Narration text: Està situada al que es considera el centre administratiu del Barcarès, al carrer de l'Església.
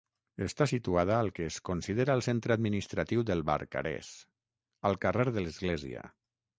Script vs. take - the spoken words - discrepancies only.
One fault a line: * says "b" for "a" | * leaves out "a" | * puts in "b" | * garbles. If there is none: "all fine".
all fine